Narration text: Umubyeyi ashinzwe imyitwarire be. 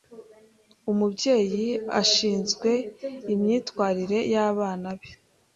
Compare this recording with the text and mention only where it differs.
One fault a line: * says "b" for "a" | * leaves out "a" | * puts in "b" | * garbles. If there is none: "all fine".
* puts in "y'abana"